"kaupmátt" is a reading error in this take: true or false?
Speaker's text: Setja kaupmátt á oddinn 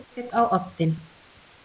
true